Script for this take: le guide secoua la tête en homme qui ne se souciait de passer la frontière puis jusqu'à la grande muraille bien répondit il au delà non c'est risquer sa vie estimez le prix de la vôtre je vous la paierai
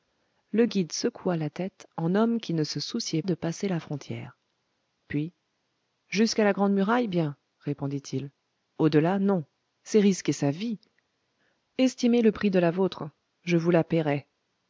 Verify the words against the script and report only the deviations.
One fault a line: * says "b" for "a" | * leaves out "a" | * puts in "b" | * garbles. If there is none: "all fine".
all fine